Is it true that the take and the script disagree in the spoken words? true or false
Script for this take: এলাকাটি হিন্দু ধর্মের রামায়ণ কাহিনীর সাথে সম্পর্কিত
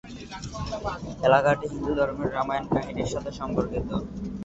false